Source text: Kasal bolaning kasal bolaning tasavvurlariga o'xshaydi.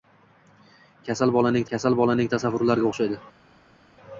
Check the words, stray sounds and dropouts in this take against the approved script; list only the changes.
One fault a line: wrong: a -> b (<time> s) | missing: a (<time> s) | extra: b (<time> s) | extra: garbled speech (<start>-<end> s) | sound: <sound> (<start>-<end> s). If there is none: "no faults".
no faults